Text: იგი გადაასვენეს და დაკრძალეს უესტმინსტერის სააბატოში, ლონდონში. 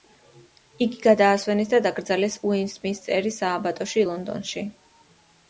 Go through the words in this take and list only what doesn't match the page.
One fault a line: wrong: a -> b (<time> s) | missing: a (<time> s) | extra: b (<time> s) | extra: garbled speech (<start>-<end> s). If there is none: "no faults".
no faults